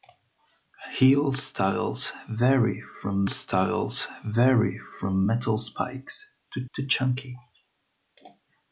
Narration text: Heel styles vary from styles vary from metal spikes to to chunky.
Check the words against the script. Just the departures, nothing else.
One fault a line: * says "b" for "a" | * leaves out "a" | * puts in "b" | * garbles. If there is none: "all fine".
all fine